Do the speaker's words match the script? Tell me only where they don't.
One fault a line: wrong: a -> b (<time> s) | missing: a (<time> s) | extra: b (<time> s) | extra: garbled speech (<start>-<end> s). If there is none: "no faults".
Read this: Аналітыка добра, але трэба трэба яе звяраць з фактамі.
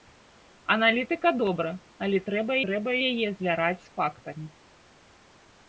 no faults